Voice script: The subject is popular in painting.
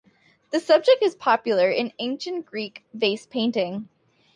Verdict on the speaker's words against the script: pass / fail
fail